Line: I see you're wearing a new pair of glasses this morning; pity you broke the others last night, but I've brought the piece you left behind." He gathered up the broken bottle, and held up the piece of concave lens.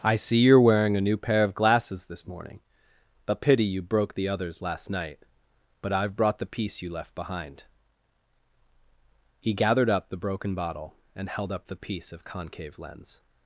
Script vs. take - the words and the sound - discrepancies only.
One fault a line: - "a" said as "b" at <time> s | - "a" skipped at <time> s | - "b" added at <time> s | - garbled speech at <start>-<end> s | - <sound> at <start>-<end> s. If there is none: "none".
- "a" added at 3.3 s